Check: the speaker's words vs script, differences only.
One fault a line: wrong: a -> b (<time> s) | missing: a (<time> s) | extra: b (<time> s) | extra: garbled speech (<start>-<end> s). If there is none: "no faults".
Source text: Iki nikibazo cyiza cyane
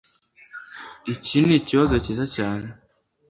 no faults